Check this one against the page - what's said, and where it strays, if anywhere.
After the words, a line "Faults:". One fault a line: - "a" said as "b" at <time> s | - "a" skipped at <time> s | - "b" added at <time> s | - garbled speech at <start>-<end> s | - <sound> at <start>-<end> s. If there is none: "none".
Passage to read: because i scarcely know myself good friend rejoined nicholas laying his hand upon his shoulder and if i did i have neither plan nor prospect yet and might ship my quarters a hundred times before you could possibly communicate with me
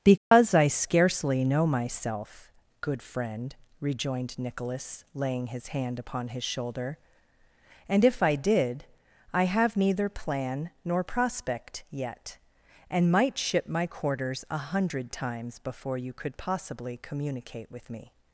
because i scarcely know myself good friend rejoined nicholas laying his hand upon his shoulder and if i did i have neither plan nor prospect yet and might ship my quarters a hundred times before you could possibly communicate with me
Faults:
- dropout at 0.2-0.3 s